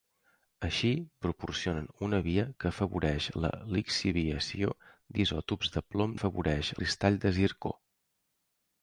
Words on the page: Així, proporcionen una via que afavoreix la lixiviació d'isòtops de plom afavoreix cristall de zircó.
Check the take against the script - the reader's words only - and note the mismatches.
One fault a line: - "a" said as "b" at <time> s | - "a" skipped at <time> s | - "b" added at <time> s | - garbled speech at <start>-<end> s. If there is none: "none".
none